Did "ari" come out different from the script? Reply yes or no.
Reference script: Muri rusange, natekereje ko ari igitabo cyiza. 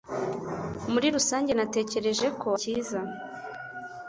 yes